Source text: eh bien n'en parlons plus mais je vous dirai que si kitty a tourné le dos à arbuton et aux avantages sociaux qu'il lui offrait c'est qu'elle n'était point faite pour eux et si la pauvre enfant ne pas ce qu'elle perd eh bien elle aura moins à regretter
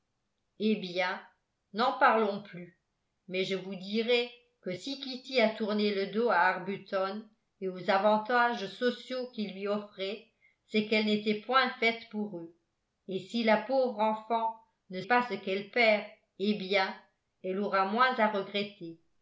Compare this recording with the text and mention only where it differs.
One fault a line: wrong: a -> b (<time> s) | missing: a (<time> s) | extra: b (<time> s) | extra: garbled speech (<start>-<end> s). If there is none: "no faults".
no faults